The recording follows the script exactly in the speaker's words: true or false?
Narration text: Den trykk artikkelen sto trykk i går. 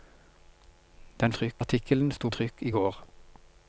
true